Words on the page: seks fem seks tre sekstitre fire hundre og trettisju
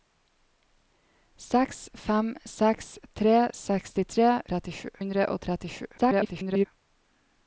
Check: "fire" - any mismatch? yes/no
yes